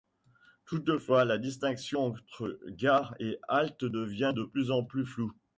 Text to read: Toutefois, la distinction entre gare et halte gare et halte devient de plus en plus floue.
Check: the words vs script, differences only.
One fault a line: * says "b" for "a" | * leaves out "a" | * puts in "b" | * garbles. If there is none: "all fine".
* leaves out "gare et halte"